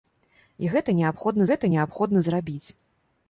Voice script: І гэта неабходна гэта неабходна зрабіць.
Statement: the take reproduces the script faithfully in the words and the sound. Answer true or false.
true